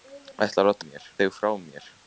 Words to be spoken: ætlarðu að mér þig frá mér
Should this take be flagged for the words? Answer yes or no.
no